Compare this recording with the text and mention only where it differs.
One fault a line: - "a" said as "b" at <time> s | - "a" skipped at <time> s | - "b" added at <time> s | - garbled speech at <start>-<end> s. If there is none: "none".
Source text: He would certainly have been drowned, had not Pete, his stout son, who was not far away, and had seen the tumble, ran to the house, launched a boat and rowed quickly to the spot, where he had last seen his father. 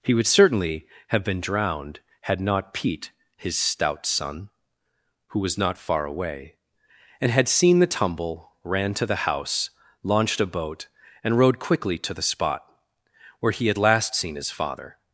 none